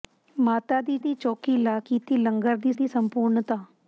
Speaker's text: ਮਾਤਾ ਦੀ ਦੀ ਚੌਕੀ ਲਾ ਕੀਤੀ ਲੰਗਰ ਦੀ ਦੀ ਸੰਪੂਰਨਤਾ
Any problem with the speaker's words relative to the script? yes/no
no